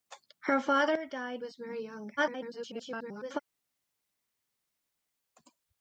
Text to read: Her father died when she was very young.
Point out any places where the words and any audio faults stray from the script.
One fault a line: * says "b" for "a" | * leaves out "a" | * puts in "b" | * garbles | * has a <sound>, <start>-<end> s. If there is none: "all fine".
* leaves out "when she"
* garbles